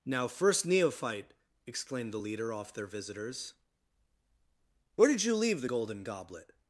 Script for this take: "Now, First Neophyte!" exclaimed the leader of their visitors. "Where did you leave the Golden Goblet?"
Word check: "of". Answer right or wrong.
wrong